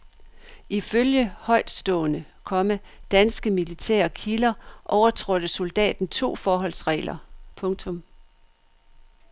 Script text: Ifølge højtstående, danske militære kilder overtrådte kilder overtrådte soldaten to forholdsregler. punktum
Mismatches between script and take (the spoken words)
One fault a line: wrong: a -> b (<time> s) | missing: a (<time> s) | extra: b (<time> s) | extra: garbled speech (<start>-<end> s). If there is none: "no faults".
extra: komma (2.4 s)
missing: kilder overtrådte (5.5 s)